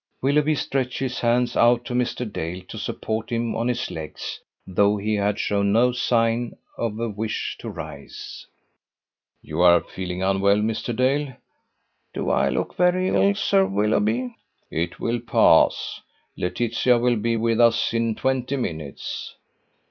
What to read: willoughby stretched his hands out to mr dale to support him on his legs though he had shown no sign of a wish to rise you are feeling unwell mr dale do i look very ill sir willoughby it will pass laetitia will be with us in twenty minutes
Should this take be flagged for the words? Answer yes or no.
no